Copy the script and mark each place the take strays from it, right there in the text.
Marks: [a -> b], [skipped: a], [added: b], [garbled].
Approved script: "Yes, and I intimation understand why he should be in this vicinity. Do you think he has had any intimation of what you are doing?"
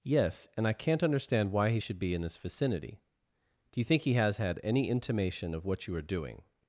"Yes, and I [intimation -> can't] understand why he should be in this vicinity. Do you think he has had any intimation of what you are doing?"